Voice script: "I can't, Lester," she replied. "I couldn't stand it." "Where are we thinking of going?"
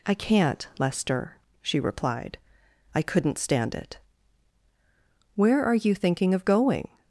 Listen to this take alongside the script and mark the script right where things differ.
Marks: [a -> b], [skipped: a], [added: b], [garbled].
"I can't, Lester," she replied. "I couldn't stand it." "Where are [we -> you] thinking of going?"